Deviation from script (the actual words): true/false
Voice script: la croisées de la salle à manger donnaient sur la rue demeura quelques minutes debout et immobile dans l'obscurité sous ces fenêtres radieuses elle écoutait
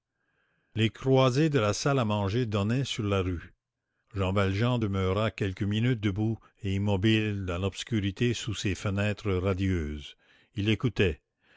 true